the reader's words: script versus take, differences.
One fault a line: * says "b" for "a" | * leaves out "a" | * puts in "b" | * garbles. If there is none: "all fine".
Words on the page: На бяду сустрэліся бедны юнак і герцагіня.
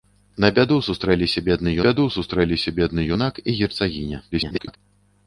* puts in "бяду сустрэліся бедны"
* garbles